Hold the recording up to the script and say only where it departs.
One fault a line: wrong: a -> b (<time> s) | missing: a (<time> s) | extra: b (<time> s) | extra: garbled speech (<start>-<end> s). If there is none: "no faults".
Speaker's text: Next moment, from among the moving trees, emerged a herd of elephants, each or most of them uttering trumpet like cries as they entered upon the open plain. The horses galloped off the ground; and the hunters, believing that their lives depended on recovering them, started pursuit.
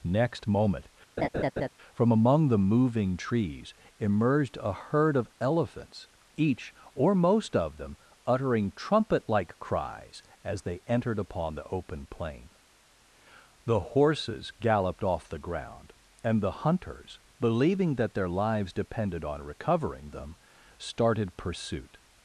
no faults